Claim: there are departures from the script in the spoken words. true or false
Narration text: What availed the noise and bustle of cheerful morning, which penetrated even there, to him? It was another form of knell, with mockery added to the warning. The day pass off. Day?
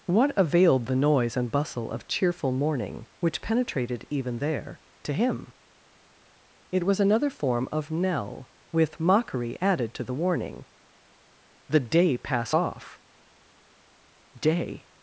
false